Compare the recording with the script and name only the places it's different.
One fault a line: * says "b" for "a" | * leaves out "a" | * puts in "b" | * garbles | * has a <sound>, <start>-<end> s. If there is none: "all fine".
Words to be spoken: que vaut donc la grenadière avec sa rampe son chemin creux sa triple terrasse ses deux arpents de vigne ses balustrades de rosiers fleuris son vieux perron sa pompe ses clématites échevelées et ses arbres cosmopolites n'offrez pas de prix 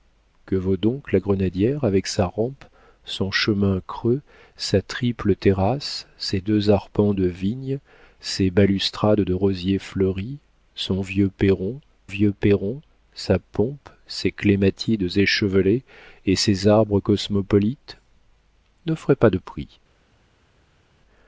* puts in "vieux perron"